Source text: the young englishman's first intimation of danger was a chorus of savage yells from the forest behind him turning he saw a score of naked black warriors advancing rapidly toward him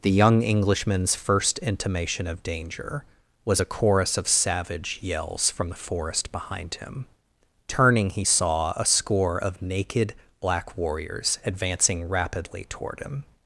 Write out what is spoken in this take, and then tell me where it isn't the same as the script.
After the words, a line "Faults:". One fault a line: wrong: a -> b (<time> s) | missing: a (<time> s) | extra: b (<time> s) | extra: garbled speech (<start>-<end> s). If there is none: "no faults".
the young englishman's first intimation of danger was a chorus of savage yells from the forest behind him turning he saw a score of naked black warriors advancing rapidly toward him
Faults:
no faults